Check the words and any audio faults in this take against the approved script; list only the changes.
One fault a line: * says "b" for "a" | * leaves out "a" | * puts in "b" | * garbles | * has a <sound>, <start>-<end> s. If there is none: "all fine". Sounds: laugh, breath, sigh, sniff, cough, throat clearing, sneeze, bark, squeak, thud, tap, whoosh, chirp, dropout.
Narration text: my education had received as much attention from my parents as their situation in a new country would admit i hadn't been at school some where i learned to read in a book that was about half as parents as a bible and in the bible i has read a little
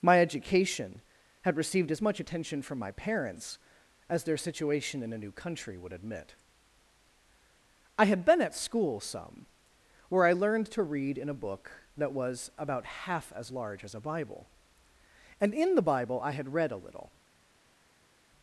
* says "had" for "hadn't"
* says "large" for "parents"
* says "had" for "has"